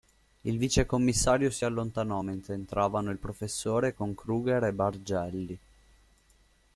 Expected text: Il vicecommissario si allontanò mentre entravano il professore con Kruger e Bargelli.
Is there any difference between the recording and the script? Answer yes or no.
no